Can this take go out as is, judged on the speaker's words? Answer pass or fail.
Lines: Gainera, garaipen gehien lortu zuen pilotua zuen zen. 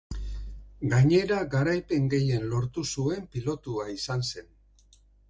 fail